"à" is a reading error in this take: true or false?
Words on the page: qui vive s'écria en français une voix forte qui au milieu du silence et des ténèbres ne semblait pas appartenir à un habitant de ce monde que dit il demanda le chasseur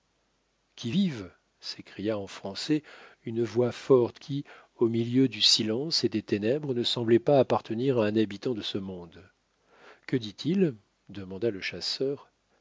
false